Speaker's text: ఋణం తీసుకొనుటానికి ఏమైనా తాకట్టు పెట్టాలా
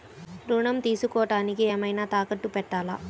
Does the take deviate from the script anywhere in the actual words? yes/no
no